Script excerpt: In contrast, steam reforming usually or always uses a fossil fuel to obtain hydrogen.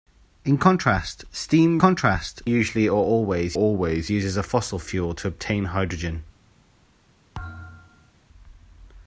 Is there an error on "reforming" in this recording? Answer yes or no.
yes